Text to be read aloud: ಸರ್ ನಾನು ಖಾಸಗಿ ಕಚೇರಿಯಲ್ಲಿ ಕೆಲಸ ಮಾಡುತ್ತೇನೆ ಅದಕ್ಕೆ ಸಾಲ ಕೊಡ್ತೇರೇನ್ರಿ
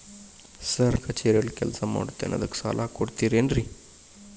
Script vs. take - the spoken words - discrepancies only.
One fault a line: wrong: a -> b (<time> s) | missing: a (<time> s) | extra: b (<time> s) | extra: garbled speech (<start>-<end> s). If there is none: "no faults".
missing: ನಾನು ಖಾಸಗಿ (1.0 s)